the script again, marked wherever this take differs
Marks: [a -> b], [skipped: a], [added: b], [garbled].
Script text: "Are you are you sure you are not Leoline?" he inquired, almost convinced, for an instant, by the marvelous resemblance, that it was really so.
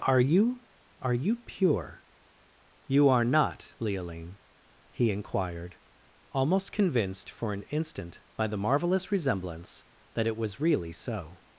"Are you are you [sure -> pure] you are not Leoline?" he inquired, almost convinced, for an instant, by the marvelous resemblance, that it was really so.